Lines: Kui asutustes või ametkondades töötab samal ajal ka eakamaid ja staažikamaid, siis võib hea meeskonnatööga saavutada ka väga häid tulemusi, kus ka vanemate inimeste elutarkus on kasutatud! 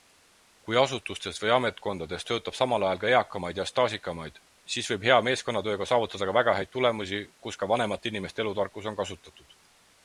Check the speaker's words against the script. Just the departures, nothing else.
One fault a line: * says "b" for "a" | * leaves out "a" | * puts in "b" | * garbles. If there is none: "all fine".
all fine